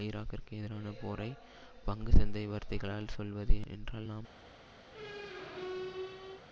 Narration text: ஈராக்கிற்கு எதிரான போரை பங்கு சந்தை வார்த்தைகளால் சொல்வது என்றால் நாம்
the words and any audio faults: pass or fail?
fail